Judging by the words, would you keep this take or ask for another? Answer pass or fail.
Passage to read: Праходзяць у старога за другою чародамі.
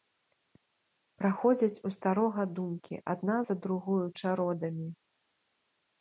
fail